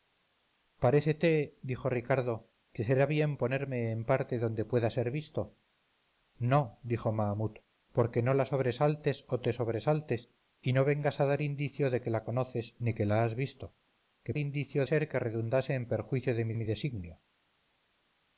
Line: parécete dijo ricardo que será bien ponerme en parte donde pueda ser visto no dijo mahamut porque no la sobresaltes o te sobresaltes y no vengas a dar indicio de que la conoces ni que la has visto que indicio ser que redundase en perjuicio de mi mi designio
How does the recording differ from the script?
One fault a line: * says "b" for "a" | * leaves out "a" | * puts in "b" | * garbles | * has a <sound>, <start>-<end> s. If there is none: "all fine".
all fine